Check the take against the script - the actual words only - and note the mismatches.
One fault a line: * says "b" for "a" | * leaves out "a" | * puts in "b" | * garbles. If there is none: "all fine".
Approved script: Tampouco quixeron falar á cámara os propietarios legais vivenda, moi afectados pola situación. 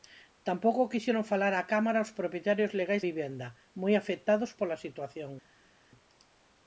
all fine